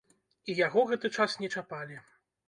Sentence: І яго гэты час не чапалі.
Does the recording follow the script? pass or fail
pass